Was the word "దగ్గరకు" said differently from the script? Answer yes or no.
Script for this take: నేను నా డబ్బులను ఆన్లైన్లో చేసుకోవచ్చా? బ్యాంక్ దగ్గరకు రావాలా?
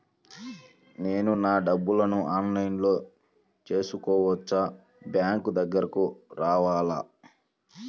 no